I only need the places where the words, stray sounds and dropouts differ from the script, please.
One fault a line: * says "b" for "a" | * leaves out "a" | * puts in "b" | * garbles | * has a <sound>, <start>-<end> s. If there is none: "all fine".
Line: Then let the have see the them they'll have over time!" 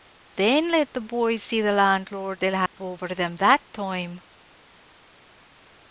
* says "boys" for "have"
* says "landlord" for "them"
* has a dropout, 2.7-2.8 s
* puts in "them that"